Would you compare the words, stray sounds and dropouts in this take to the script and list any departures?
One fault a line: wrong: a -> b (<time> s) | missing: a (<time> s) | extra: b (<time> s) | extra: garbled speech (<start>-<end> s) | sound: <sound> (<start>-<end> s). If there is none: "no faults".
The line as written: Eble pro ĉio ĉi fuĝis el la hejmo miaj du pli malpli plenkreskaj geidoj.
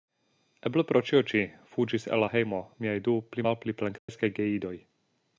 sound: dropout (4.0-4.1 s)